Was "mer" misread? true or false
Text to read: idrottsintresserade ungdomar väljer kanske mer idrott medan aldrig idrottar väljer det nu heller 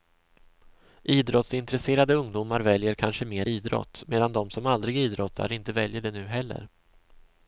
false